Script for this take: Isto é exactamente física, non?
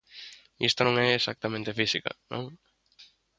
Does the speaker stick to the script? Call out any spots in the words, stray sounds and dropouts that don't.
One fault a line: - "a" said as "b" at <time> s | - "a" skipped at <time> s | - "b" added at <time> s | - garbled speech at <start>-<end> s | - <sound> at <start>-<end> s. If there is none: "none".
- "non" added at 0.8 s